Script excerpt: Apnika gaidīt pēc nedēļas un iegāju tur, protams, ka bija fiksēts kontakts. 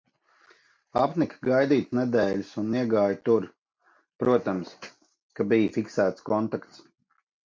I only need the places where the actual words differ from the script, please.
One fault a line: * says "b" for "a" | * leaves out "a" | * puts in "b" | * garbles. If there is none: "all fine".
* leaves out "pēc"